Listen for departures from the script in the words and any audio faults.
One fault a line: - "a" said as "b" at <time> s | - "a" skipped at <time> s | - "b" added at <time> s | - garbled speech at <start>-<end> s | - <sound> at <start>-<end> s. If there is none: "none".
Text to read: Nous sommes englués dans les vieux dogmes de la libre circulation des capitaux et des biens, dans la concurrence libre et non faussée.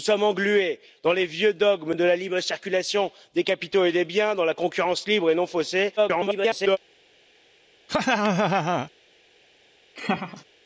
- garbled speech at 6.0-6.8 s
- laugh at 7.9-8.9 s
- laugh at 10.0-10.4 s